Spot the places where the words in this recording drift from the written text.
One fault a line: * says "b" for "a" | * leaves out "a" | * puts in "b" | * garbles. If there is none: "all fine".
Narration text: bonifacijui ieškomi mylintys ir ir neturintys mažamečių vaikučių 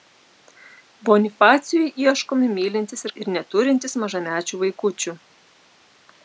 all fine